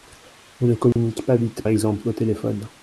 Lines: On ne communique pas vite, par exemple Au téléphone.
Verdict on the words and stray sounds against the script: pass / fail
fail